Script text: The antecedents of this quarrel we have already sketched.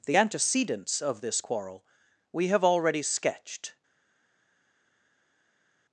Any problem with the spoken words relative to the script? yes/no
no